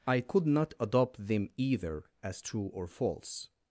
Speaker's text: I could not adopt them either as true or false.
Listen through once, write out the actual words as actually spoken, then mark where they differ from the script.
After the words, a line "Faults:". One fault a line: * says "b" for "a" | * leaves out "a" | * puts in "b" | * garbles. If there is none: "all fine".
I could not adopt them either as true or false.
Faults:
all fine